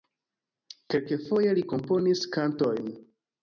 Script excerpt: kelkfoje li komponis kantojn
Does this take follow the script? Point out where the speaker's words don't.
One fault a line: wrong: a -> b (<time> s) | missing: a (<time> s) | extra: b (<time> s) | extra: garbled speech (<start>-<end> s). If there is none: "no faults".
no faults